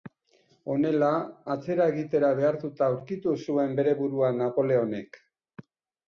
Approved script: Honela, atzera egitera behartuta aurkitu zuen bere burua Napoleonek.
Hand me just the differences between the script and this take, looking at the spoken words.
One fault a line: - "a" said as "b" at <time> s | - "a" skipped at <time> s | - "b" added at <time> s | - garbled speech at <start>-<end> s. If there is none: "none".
none